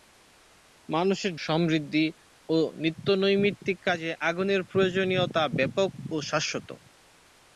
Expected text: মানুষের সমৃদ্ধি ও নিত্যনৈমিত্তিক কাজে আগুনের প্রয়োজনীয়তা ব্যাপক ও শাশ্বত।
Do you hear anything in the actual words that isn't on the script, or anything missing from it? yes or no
no